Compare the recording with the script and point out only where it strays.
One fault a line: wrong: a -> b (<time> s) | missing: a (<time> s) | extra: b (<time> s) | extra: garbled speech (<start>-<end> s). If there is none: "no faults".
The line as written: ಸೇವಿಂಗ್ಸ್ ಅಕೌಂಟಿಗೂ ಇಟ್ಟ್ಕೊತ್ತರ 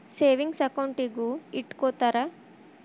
no faults